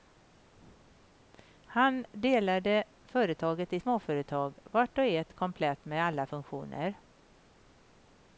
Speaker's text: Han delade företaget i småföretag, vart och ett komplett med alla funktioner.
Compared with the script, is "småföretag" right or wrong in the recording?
right